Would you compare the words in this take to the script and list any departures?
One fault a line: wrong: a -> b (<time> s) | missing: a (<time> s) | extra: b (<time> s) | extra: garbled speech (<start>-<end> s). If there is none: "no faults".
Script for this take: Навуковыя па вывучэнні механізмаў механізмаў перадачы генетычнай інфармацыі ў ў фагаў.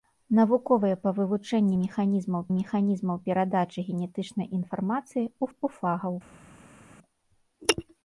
no faults